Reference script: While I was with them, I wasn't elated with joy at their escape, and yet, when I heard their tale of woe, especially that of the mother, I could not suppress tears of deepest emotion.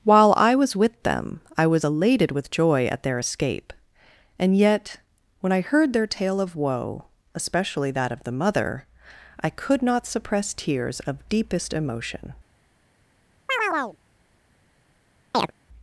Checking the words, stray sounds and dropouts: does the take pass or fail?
fail